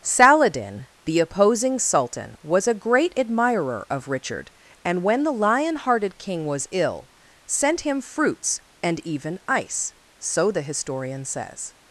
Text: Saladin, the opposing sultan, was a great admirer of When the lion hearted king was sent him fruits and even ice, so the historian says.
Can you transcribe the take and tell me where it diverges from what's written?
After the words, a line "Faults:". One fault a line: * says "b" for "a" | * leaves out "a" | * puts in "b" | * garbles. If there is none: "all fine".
Saladin, the opposing sultan, was a great admirer of Richard, and when the lion hearted king was ill, sent him fruits and even ice, so the historian says.
Faults:
* puts in "Richard and"
* puts in "ill"